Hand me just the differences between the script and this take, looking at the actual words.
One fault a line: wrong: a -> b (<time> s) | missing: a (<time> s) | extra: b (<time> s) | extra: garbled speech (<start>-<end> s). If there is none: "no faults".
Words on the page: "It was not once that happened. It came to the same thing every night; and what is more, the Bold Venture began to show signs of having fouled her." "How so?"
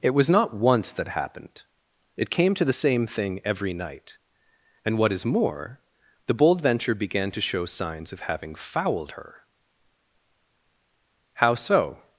no faults